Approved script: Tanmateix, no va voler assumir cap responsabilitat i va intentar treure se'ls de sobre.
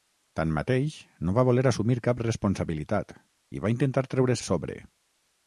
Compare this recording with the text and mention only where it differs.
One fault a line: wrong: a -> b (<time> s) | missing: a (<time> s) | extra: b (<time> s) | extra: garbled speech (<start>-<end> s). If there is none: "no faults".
missing: se'ls (4.4 s)